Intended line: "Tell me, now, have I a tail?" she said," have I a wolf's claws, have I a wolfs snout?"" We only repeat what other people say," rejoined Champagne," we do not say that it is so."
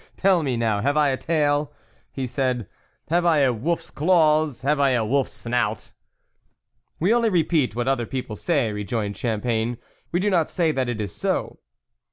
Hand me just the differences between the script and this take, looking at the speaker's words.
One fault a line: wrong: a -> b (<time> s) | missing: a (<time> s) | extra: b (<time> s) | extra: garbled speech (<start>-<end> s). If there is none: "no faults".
wrong: she -> he (2.1 s)